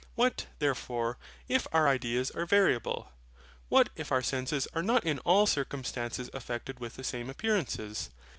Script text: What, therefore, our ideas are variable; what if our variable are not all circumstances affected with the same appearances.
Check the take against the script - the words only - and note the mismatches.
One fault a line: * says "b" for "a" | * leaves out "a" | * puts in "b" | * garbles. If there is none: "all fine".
* puts in "if"
* says "senses" for "variable"
* puts in "in"